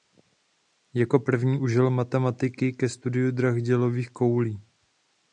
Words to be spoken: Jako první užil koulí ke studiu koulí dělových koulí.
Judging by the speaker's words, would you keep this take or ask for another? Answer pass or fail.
fail